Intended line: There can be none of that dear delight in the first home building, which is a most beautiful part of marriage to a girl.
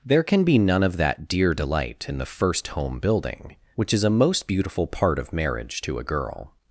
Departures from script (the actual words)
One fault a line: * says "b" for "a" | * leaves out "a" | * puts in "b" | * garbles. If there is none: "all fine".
all fine